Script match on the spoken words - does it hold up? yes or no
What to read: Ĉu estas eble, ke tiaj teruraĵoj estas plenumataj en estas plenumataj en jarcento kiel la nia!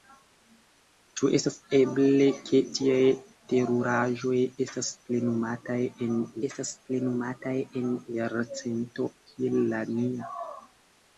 yes